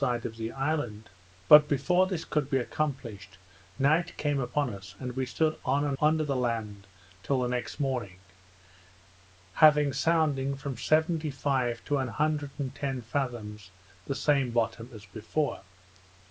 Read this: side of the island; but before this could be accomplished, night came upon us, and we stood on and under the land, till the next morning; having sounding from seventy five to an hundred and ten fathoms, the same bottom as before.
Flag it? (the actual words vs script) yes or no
no